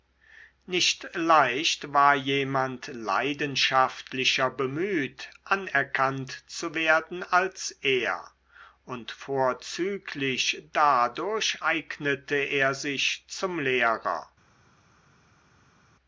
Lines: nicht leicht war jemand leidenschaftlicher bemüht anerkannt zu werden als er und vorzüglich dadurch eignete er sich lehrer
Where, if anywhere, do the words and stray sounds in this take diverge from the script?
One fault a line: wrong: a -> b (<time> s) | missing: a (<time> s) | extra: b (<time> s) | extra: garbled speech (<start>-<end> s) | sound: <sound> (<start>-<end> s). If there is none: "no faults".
extra: zum (13.3 s)